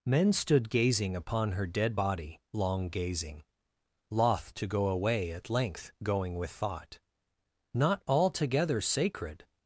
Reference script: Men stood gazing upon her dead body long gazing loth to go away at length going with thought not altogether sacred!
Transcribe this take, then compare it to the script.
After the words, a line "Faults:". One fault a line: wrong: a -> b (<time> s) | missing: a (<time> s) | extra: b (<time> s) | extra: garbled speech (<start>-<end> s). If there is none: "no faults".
Men stood gazing upon her dead body long gazing loth to go away at length going with thought not altogether sacred!
Faults:
no faults